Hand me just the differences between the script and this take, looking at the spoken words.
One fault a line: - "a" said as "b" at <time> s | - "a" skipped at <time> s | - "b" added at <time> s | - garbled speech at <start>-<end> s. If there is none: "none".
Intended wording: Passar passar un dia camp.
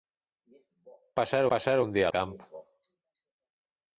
none